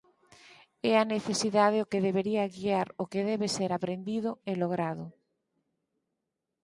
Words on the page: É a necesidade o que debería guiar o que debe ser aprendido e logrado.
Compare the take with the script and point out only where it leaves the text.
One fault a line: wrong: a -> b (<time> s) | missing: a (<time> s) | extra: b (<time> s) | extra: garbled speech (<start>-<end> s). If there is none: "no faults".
no faults